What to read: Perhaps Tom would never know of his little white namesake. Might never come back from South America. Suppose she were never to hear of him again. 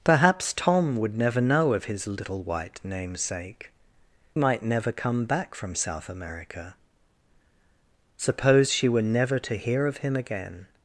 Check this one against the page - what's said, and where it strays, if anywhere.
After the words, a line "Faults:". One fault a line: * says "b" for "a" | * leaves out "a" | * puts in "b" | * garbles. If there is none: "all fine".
Perhaps Tom would never know of his little white namesake. Might never come back from South America. Suppose she were never to hear of him again.
Faults:
all fine